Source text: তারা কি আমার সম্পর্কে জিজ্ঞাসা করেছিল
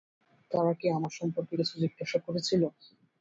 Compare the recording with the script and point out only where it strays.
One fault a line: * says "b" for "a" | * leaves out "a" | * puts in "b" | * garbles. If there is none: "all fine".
* puts in "কিছু"